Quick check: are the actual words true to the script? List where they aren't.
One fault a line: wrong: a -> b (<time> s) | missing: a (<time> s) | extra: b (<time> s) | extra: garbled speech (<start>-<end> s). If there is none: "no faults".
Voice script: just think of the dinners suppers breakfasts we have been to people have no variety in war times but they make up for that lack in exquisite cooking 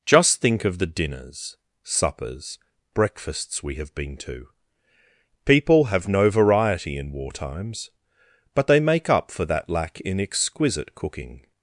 no faults